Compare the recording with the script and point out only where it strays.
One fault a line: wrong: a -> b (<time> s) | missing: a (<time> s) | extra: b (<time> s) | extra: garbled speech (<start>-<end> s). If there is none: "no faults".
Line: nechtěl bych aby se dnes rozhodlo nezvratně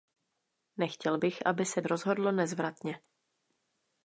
missing: dnes (1.8 s)